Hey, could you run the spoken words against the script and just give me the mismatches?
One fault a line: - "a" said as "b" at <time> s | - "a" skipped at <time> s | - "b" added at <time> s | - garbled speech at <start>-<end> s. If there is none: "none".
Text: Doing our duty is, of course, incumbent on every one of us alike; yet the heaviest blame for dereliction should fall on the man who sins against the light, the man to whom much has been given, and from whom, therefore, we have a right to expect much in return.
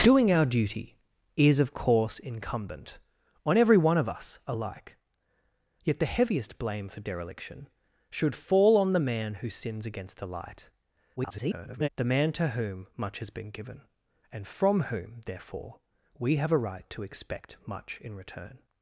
- garbled speech at 11.2-11.9 s